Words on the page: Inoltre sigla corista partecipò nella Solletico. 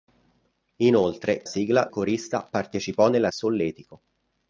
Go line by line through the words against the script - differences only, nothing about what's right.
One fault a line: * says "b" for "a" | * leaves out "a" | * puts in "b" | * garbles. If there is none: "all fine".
all fine